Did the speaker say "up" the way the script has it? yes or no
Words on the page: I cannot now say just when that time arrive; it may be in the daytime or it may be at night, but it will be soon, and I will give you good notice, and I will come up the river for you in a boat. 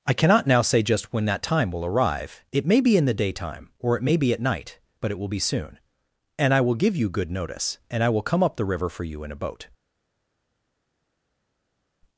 yes